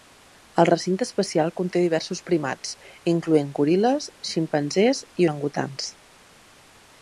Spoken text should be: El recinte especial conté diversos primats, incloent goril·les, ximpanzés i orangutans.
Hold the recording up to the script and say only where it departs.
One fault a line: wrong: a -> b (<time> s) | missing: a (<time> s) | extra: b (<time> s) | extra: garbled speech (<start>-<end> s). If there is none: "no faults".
no faults